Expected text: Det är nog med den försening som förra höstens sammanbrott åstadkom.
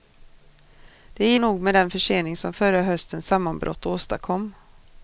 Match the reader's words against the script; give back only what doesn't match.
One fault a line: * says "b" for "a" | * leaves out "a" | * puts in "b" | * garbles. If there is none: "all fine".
all fine